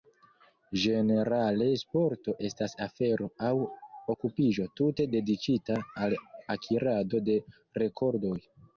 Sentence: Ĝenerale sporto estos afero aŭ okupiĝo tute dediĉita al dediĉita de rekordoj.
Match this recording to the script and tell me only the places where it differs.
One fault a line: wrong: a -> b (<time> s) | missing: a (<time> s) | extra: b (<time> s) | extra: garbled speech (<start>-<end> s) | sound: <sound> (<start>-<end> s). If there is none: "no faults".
wrong: estos -> estas (2.5 s)
wrong: dediĉita -> akirado (6.6 s)